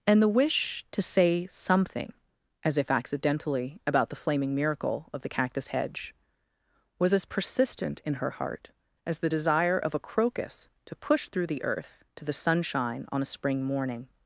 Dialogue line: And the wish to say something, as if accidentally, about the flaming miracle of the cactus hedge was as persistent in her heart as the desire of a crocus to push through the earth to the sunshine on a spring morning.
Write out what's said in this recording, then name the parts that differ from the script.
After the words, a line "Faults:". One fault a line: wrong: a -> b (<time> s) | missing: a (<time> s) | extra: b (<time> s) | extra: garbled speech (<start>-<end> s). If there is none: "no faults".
And the wish to say something, as if accidentally, about the flaming miracle of the cactus hedge was as persistent in her heart as the desire of a crocus to push through the earth to the sunshine on a spring morning.
Faults:
no faults